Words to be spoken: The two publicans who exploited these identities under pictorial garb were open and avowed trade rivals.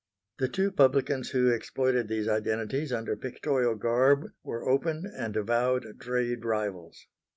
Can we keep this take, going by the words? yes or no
yes